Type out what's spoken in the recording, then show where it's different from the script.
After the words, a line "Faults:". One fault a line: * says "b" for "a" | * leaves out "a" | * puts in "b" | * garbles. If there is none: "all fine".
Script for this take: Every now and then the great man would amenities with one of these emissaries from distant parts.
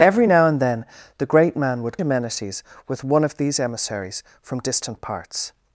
Every now and then the great man would amenities with one of these emissaries from distant parts.
Faults:
all fine